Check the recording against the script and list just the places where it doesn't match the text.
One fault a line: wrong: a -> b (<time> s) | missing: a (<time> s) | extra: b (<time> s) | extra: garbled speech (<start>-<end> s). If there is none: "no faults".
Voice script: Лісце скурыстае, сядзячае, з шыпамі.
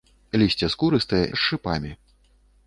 missing: сядзячае (1.2 s)